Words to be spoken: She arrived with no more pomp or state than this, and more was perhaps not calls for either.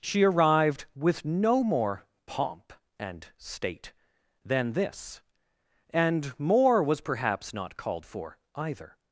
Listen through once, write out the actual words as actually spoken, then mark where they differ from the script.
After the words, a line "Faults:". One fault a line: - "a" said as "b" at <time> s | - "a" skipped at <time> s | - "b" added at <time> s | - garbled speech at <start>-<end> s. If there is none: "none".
She arrived with no more pomp and state than this, and more was perhaps not called for either.
Faults:
- "or" said as "and" at 3.0 s
- "calls" said as "called" at 7.8 s